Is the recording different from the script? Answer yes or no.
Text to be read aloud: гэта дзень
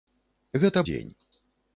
no